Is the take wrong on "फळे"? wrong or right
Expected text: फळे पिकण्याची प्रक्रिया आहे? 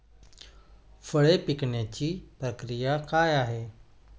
right